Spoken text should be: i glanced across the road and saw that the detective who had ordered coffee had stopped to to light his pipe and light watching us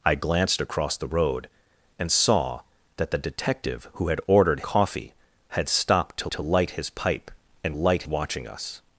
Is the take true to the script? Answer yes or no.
yes